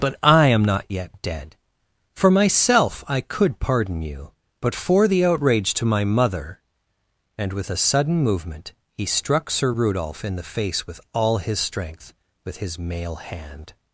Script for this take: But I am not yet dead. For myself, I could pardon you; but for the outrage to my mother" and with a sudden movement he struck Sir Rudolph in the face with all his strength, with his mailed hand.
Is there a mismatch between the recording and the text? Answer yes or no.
yes